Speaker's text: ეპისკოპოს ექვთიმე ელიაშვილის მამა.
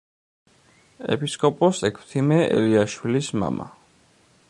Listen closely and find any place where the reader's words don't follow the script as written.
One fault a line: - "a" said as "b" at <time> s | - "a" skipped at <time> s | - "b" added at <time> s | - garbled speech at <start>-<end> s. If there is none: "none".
none